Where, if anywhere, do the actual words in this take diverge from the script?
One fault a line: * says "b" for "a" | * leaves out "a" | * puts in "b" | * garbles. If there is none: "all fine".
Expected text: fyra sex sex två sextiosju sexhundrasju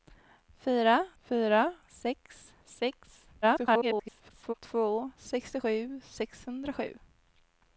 * puts in "fyra"
* garbles